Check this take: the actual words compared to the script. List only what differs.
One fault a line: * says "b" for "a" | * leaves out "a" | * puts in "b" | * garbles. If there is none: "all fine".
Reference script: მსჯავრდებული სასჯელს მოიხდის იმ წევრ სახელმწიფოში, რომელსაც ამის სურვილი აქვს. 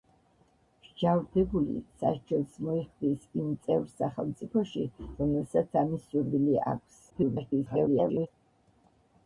* garbles